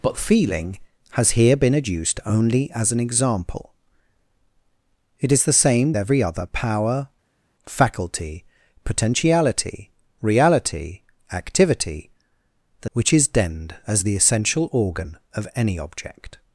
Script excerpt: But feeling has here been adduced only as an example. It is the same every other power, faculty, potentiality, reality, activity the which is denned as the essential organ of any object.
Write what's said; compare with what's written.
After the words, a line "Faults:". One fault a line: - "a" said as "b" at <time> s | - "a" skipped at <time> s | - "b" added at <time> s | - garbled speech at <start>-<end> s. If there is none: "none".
But feeling has here been adduced only as an example. It is the same every other power, faculty, potentiality, reality, activity the which is denned as the essential organ of any object.
Faults:
none